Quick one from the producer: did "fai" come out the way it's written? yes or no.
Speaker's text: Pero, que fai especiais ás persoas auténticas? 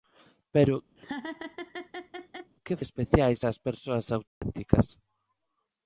no